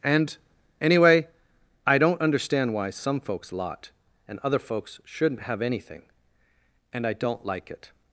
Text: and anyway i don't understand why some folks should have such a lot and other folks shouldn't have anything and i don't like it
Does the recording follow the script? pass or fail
fail